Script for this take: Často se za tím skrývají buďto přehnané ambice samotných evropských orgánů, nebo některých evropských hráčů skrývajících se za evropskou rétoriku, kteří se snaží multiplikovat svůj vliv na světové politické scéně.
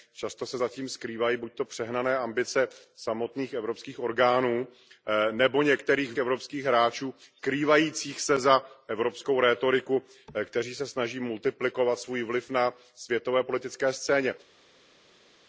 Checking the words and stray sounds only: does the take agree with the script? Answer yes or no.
yes